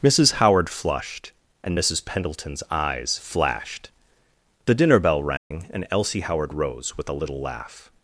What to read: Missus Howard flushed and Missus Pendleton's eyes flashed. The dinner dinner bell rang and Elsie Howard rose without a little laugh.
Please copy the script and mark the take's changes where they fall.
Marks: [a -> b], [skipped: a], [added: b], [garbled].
Missus Howard flushed and Missus Pendleton's eyes flashed. The dinner [skipped: dinner] bell rang and Elsie Howard rose [without -> with] a little laugh.